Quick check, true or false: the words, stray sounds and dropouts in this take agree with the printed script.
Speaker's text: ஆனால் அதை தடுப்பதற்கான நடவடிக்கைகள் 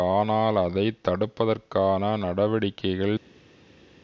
true